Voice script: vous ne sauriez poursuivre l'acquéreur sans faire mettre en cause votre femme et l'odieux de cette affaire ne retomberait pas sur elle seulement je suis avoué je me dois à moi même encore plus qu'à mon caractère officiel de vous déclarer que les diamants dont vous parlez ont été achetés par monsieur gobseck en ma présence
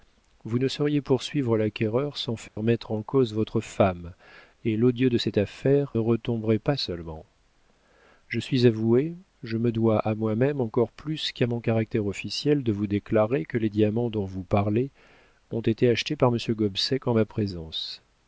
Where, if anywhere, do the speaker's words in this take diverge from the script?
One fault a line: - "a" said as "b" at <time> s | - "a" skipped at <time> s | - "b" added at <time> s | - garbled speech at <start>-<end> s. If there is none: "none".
- "ne" skipped at 5.9 s
- "sur elle" skipped at 6.8 s